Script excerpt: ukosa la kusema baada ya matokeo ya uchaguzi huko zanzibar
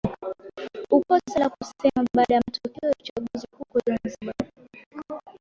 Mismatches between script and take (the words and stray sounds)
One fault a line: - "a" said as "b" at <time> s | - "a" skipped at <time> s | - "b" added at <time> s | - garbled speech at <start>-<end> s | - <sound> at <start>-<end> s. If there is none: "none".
none